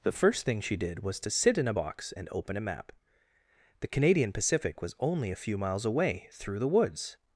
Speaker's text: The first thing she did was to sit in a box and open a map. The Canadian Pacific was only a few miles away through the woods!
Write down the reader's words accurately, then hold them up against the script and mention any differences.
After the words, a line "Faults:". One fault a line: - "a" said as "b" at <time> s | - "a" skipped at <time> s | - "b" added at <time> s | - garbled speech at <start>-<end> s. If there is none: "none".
The first thing she did was to sit in a box and open a map. The Canadian Pacific was only a few miles away through the woods!
Faults:
none